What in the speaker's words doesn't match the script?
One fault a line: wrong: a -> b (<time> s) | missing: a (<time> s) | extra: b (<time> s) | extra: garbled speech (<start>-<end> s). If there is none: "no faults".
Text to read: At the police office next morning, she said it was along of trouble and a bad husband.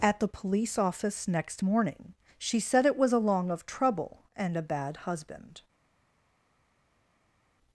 no faults